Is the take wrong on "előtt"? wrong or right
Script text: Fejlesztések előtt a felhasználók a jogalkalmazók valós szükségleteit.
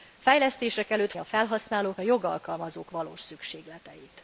right